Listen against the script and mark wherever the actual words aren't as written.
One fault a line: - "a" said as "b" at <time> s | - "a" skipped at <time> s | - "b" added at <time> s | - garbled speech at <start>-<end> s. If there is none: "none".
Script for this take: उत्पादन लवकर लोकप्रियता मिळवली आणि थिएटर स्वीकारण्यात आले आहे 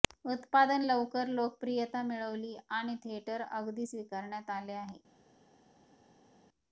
- "अगदी" added at 3.5 s